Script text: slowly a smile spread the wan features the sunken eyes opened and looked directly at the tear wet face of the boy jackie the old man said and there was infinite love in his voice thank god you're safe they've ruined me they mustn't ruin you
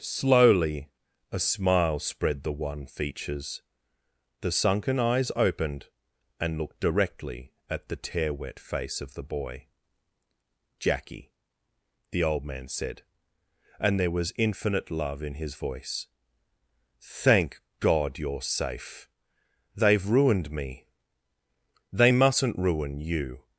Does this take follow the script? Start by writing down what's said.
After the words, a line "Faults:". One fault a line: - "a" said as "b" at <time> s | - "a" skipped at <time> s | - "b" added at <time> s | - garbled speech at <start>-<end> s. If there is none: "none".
slowly a smile spread the wan features the sunken eyes opened and looked directly at the tear wet face of the boy jackie the old man said and there was infinite love in his voice thank god you're safe they've ruined me they mustn't ruin you
Faults:
none